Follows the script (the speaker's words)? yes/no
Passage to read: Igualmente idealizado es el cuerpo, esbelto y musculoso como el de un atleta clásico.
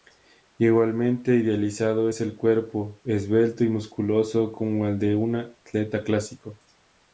yes